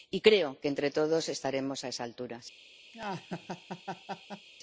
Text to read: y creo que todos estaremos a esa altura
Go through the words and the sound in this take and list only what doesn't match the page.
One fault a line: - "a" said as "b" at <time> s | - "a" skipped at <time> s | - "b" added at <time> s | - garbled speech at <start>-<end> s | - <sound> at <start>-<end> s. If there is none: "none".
- "entre" added at 0.7 s
- laugh at 2.9-4.5 s